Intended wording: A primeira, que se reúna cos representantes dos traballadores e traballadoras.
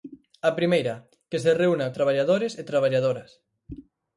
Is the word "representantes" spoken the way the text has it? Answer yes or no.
no